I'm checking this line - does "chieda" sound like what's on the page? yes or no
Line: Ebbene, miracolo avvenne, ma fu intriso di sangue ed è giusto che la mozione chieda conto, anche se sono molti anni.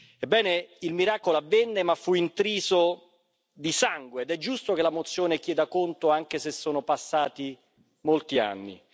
yes